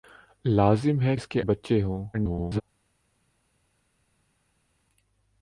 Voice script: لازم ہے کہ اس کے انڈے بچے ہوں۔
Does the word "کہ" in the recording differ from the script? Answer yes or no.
yes